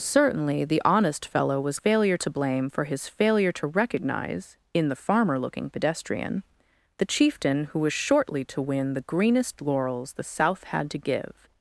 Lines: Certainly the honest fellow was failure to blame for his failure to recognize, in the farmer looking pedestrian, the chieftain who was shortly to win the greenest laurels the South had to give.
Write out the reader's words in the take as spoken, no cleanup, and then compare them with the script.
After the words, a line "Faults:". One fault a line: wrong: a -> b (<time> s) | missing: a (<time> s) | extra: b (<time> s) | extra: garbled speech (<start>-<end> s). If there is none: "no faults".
Certainly the honest fellow was failure to blame for his failure to recognize, in the farmer looking pedestrian, the chieftain who was shortly to win the greenest laurels the South had to give.
Faults:
no faults